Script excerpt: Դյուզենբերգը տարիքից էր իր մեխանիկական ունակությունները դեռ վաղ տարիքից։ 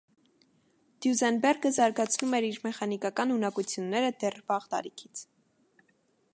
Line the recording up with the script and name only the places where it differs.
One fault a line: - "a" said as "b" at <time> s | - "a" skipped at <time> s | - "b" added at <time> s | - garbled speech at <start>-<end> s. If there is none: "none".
- "տարիքից" said as "զարգացնում" at 1.8 s